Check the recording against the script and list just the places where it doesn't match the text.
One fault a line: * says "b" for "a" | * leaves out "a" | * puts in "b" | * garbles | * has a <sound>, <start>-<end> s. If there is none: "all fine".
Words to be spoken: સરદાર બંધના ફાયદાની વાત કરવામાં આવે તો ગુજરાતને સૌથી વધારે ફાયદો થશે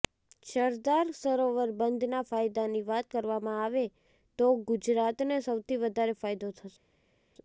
* puts in "સરોવર"